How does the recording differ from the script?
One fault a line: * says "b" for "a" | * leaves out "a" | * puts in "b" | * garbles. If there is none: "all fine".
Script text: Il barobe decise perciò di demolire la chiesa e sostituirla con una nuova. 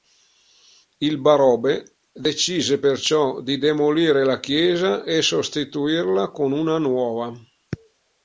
all fine